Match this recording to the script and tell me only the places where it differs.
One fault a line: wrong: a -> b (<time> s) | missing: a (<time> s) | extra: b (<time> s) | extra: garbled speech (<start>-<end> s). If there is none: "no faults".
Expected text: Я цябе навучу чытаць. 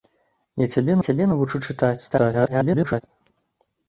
extra: цябе (1.1 s)
extra: garbled speech (2.1-3.0 s)